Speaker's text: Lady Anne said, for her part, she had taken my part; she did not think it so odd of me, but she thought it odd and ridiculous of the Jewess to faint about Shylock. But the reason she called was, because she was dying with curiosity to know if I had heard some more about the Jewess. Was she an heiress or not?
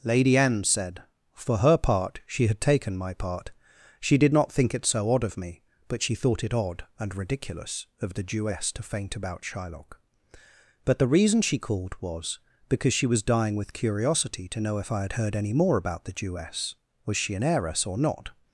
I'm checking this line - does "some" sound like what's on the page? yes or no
no